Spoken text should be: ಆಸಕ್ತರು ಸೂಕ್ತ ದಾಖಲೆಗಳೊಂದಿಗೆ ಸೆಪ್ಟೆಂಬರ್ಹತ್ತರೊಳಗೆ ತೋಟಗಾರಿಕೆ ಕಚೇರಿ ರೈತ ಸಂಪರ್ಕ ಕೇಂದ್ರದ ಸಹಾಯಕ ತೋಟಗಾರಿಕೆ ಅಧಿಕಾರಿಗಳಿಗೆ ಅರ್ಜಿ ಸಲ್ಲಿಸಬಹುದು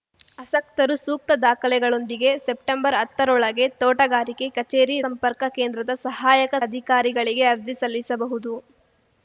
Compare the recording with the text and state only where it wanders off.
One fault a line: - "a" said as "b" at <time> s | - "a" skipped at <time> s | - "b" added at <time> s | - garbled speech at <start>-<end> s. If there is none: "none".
- "ರೈತ" skipped at 5.0 s
- "ತೋಟಗಾರಿಕೆ" skipped at 6.5 s